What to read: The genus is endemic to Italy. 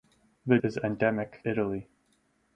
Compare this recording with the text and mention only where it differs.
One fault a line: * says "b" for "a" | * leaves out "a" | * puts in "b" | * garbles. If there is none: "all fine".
* leaves out "genus"
* leaves out "to"